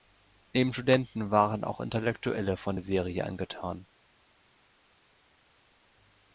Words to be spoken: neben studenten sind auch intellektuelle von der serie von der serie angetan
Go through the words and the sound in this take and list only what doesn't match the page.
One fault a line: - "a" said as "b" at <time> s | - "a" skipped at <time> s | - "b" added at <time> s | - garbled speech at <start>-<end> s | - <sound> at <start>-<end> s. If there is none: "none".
- "sind" said as "waren" at 1.3 s
- "von der serie" skipped at 3.3 s